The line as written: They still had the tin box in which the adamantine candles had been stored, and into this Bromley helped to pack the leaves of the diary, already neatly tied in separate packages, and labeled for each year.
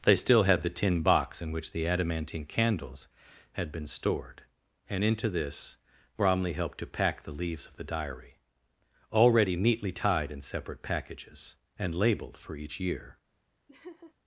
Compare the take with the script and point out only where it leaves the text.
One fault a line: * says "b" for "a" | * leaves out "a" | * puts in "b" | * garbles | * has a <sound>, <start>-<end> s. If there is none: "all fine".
* has a laugh, 13.7-14.1 s